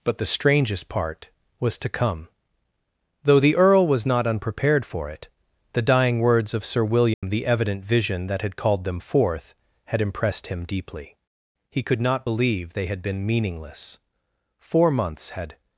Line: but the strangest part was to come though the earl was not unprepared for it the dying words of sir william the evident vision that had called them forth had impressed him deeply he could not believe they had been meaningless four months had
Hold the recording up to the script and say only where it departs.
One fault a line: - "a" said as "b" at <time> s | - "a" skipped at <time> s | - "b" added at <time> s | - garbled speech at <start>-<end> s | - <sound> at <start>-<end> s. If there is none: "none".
- dropout at 7.1-7.2 s